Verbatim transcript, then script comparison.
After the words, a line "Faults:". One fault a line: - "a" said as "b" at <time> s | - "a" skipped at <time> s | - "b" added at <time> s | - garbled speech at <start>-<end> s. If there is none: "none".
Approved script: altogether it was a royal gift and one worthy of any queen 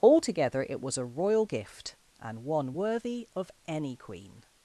altogether it was a royal gift and one worthy of any queen
Faults:
none